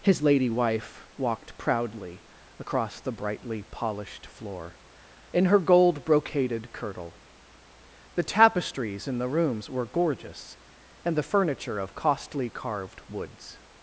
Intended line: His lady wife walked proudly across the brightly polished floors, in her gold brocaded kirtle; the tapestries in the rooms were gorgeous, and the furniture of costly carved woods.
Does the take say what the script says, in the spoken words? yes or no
no